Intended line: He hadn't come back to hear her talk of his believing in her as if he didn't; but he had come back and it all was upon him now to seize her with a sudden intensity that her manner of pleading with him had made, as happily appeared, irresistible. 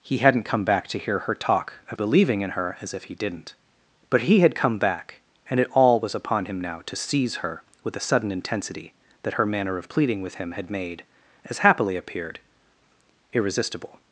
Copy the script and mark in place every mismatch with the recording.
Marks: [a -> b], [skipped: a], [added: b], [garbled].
He hadn't come back to hear her talk of [skipped: his] believing in her as if he didn't; but he had come back and it all was upon him now to seize her with a sudden intensity that her manner of pleading with him had made, as happily appeared, irresistible.